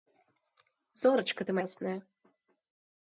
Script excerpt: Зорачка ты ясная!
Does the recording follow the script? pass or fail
pass